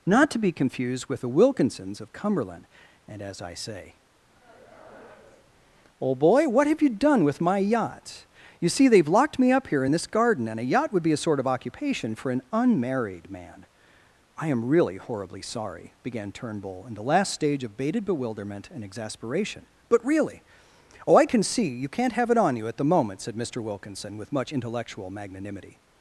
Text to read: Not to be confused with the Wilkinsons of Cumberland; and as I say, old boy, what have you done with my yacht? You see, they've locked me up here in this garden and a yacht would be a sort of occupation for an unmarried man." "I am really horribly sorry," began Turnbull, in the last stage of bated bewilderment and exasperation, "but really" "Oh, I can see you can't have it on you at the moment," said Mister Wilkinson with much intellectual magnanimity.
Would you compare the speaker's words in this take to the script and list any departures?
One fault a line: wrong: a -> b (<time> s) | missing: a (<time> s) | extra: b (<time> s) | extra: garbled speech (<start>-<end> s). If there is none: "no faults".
no faults